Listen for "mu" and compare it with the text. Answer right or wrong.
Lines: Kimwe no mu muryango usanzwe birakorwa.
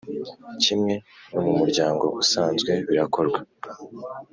right